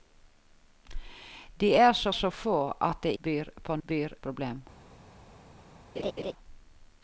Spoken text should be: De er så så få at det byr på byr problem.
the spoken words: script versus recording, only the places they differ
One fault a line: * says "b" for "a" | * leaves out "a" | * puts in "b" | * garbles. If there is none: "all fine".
all fine